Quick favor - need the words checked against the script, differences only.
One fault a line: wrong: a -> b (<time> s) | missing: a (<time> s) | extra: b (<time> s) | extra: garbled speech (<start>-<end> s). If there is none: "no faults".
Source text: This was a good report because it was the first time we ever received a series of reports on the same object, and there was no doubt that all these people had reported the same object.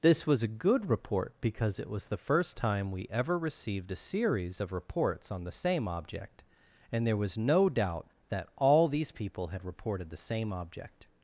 no faults